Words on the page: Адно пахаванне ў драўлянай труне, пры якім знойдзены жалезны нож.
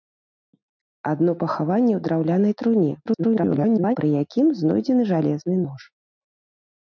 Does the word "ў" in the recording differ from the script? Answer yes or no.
no